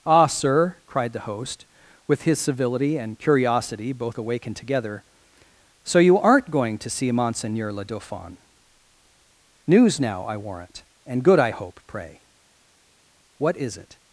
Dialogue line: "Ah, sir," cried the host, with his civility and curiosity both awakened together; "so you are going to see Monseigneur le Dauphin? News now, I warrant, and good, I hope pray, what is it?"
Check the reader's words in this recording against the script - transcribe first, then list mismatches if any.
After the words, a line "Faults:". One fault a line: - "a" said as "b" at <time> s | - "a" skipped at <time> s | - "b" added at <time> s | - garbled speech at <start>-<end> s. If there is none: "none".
"Ah, sir," cried the host, with his civility and curiosity both awakened together; "so you aren't going to see Monseigneur le Dauphin? News now, I warrant, and good, I hope pray, what is it?"
Faults:
- "are" said as "aren't" at 6.2 s